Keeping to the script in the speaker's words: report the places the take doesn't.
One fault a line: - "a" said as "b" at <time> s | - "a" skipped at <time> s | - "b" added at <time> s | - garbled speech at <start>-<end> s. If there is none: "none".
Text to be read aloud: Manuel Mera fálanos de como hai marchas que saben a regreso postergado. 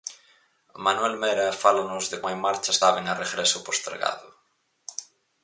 - "como" skipped at 2.2 s
- "que" skipped at 2.8 s